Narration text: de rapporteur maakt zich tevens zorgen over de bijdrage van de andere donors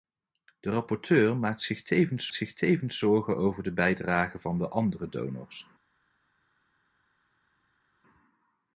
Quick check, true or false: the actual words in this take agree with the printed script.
false